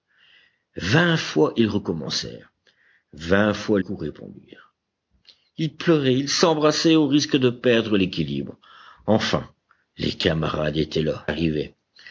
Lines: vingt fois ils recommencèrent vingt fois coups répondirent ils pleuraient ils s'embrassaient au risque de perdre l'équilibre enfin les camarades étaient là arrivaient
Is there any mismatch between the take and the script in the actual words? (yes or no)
no